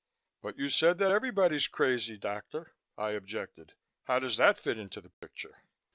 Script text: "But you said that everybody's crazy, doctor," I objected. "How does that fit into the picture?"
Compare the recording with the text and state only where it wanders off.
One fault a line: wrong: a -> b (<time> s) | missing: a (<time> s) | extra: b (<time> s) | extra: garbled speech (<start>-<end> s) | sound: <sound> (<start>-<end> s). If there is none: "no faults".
sound: dropout (5.1-5.2 s)